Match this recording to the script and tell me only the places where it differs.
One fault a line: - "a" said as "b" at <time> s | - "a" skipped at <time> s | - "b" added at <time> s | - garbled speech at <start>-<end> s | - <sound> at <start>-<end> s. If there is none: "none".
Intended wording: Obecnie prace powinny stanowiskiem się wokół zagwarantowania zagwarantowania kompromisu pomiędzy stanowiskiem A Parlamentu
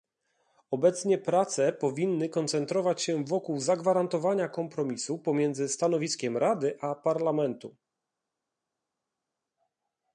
- "stanowiskiem" said as "koncentrować" at 2.3 s
- "zagwarantowania" skipped at 4.5 s
- "Rady" added at 6.4 s